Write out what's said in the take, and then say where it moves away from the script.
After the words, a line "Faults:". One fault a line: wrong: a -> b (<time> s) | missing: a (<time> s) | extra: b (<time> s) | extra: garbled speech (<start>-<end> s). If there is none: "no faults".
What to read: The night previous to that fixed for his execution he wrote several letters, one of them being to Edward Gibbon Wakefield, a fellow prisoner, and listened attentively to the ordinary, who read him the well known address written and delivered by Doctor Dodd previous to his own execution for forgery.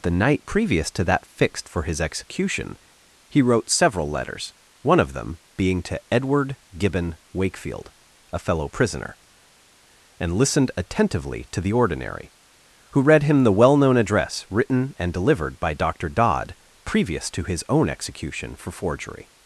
The night previous to that fixed for his execution he wrote several letters, one of them being to Edward Gibbon Wakefield, a fellow prisoner, and listened attentively to the ordinary, who read him the well known address written and delivered by Doctor Dodd previous to his own execution for forgery.
Faults:
no faults